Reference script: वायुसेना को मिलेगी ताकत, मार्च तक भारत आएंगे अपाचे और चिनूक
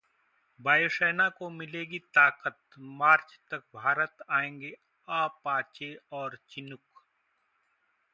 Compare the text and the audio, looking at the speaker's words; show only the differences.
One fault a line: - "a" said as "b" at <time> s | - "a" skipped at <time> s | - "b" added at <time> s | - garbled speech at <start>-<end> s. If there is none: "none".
none